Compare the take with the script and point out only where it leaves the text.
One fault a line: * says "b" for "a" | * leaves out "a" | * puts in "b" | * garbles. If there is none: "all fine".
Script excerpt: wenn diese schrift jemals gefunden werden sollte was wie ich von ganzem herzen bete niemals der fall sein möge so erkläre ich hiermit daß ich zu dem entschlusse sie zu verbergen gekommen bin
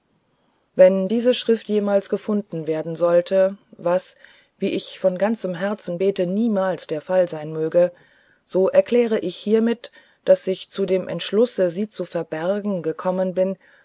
all fine